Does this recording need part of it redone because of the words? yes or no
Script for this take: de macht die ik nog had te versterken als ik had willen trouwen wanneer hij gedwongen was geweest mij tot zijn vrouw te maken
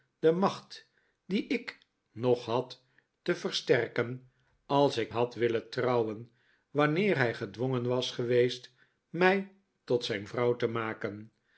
no